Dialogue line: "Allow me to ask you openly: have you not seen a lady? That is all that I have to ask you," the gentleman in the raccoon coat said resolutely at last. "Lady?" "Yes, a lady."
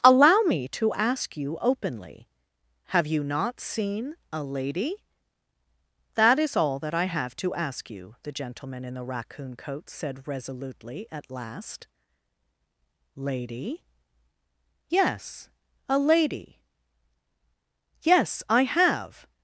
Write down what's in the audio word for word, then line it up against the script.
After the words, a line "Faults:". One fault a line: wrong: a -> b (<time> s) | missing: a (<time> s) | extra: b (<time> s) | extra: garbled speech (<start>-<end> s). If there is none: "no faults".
"Allow me to ask you openly: have you not seen a lady? That is all that I have to ask you," the gentleman in the raccoon coat said resolutely at last. "Lady?" "Yes, a lady." "Yes, I have
Faults:
extra: Yes I have (18.0 s)